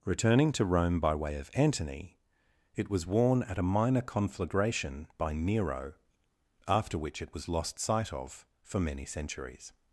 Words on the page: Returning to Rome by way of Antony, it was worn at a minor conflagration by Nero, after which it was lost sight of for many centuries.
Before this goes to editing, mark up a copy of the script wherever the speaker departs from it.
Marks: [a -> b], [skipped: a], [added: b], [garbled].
Returning to Rome by way of Antony, it was worn at a minor conflagration by Nero, after which it was lost sight of for many centuries.